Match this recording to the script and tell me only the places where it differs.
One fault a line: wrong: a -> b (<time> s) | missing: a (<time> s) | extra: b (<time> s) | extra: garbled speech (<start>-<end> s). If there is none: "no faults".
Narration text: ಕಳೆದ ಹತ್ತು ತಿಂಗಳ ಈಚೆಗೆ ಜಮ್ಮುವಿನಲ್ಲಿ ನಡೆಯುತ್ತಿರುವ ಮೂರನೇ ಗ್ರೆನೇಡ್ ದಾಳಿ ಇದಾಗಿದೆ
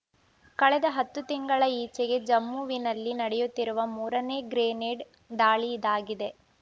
no faults